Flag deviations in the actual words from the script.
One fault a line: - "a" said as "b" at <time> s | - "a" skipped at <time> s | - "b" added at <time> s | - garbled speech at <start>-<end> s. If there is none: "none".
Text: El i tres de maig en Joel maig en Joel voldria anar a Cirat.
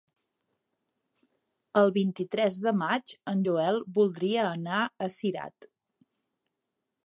- "vint" added at 2.0 s
- "maig en Joel" skipped at 3.8 s